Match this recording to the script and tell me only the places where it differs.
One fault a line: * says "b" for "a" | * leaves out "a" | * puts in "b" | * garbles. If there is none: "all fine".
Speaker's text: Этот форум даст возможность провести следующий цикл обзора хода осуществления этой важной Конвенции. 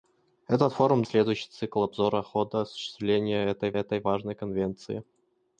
* leaves out "даст возможность провести"
* puts in "этой"